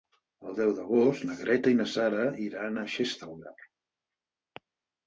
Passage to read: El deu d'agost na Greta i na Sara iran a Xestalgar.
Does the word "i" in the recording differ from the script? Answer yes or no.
no